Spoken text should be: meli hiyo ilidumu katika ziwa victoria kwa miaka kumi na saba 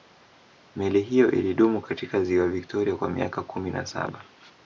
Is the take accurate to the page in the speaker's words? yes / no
yes